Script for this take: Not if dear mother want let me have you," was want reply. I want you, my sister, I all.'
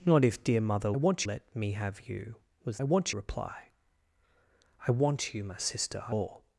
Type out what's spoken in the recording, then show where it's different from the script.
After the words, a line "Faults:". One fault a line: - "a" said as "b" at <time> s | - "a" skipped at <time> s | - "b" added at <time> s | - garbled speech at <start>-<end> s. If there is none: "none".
Not if dear mother want let me have you," was want reply. I want you, my sister, I all.'
Faults:
none